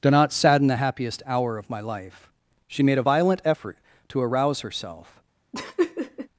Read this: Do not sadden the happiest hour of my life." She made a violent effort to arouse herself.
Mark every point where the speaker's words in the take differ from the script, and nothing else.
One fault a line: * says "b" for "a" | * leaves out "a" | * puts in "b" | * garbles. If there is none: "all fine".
all fine